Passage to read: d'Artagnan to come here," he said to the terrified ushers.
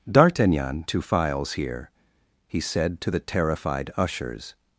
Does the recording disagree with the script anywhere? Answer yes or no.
yes